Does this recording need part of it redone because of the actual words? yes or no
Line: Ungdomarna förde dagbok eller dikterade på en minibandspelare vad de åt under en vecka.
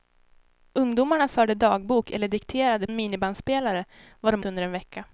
yes